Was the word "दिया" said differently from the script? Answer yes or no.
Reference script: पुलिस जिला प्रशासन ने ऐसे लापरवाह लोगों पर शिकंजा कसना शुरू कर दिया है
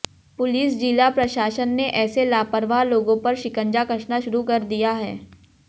no